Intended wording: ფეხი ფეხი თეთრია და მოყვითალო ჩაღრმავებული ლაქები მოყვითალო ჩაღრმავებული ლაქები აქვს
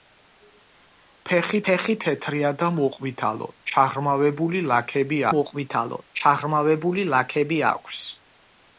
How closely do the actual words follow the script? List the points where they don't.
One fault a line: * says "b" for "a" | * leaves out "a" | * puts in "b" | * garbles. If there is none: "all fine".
all fine